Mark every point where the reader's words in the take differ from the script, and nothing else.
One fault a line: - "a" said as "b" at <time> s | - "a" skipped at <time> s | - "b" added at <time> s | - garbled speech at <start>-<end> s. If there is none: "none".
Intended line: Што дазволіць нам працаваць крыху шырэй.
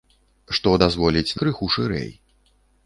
- "нам працаваць" skipped at 1.4 s